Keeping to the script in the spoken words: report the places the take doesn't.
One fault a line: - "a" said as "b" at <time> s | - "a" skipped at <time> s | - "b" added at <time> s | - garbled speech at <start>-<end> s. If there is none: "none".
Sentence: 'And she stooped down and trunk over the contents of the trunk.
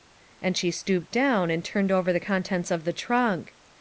- "trunk" said as "turned" at 1.6 s